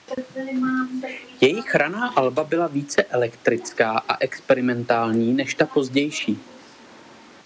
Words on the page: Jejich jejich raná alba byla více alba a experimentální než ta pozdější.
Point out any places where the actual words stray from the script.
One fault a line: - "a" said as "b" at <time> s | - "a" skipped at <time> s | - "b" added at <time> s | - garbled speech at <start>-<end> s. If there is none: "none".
- "jejich" skipped at 1.8 s
- "alba" said as "elektrická" at 3.0 s